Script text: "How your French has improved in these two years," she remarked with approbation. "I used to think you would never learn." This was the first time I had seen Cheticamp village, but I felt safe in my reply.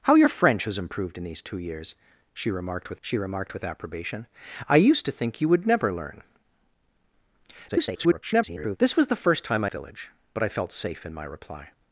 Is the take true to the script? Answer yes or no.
no